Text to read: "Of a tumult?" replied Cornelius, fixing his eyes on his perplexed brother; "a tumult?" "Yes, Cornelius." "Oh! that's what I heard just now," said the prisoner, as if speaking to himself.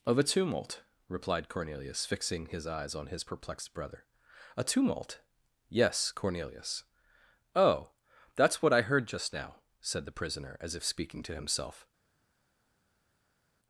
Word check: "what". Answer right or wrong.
right